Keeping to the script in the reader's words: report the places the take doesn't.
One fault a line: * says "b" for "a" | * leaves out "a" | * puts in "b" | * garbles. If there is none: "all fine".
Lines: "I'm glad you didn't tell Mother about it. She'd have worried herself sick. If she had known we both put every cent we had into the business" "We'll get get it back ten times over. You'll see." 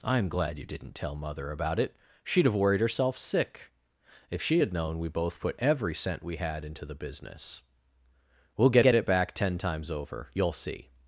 all fine